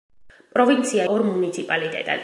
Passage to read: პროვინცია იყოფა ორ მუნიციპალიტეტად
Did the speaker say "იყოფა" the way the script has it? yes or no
no